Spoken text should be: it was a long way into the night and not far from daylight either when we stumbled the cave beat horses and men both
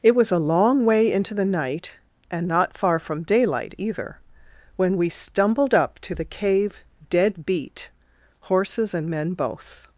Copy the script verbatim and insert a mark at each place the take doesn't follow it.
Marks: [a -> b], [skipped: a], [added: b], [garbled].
it was a long way into the night and not far from daylight either when we stumbled [added: up to] the cave [added: dead] beat horses and men both